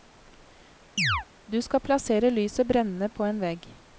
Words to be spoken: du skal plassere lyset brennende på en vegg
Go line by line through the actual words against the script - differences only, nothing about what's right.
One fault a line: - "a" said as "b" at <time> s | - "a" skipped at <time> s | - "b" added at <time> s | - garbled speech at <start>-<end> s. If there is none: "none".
none